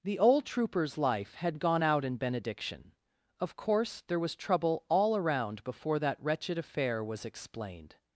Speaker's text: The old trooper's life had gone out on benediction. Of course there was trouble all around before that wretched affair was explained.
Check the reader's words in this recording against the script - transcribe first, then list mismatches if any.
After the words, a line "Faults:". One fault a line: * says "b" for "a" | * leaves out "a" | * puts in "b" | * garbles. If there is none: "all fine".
The old trooper's life had gone out in benediction. Of course there was trouble all around before that wretched affair was explained.
Faults:
* says "in" for "on"